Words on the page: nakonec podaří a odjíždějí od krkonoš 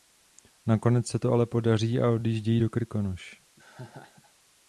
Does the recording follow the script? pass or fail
fail